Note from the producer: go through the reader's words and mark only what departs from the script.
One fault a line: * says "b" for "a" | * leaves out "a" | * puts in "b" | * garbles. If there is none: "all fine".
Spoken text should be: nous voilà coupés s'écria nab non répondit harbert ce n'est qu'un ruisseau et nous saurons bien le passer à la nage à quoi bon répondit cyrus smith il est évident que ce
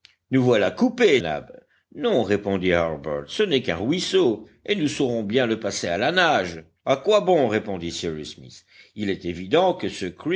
* leaves out "s'écria"